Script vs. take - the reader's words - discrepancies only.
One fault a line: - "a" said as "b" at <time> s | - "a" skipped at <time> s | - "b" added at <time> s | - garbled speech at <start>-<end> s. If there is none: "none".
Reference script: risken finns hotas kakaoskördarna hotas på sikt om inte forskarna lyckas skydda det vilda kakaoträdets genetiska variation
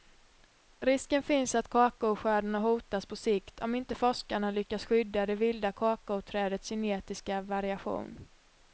- "hotas" said as "att" at 1.6 s